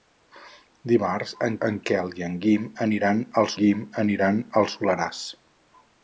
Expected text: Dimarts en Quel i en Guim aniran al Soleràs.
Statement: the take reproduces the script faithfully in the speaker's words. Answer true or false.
false